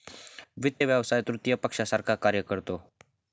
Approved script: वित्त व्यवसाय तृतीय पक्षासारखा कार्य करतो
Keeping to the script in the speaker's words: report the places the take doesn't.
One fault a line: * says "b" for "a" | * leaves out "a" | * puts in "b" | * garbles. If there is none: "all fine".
all fine